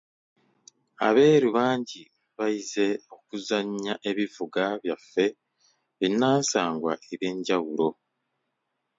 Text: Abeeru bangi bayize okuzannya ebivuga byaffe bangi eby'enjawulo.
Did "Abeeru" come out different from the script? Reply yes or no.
no